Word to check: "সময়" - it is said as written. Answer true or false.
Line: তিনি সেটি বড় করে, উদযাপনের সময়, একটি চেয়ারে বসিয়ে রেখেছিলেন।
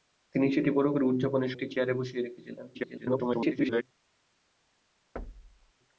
false